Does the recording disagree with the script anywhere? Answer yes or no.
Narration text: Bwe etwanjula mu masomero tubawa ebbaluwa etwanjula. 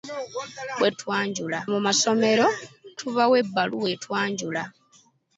no